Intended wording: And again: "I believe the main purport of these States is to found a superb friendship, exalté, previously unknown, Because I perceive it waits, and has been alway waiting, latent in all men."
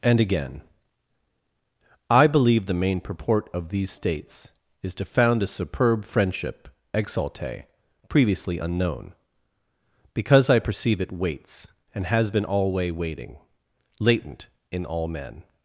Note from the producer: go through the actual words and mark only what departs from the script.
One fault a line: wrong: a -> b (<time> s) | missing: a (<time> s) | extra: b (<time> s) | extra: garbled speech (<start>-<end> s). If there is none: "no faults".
no faults